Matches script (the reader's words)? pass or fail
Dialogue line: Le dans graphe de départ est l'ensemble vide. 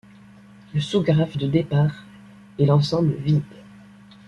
fail